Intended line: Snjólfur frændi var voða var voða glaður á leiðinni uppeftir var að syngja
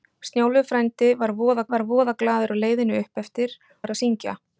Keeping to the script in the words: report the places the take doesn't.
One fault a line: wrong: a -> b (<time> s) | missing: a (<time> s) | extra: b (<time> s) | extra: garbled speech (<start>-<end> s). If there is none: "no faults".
no faults